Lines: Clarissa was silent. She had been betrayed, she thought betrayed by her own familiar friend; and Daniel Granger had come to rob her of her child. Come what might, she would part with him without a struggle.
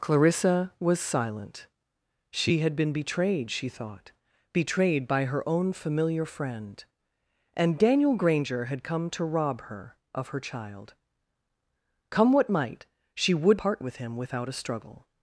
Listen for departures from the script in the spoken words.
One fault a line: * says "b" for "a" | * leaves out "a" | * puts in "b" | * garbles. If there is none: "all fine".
all fine